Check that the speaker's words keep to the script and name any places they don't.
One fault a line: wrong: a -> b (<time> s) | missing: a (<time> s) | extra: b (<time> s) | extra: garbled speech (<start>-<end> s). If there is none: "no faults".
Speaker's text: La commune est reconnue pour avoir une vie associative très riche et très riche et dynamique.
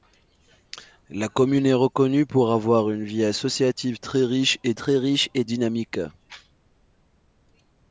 no faults